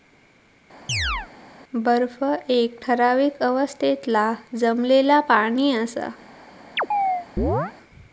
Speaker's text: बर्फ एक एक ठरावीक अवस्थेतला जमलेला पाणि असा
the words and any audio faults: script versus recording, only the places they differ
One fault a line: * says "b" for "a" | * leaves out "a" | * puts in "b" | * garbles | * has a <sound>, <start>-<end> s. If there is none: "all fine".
* has a chirp, 0.9-1.3 s
* leaves out "एक"
* has a chirp, 6.8-7.7 s